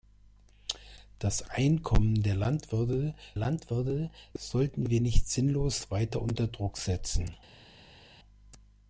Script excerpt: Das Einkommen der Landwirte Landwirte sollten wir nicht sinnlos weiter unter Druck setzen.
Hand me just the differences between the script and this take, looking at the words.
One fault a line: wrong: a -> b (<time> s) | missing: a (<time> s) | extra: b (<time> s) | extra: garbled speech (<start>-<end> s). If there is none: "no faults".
no faults